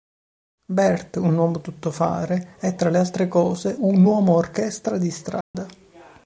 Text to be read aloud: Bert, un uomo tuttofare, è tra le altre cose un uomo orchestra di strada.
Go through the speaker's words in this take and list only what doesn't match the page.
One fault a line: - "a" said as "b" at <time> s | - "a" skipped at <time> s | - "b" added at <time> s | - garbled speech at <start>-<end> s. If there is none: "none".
none